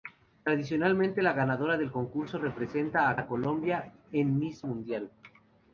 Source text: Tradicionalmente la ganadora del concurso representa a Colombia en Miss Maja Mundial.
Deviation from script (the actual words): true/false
true